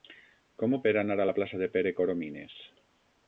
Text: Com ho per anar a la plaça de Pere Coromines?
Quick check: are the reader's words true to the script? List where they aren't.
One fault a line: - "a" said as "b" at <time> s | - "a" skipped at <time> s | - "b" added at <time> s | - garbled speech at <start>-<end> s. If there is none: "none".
none